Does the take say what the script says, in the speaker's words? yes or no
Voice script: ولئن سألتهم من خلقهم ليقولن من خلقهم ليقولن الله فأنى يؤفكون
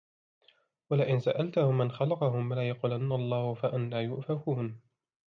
no